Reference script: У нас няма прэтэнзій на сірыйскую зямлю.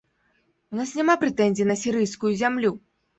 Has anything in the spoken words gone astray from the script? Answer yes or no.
no